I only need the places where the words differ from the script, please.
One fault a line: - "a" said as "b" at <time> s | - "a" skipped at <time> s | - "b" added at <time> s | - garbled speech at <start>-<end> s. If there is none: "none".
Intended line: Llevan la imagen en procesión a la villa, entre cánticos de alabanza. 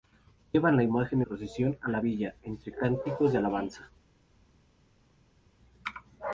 - "en" skipped at 1.2 s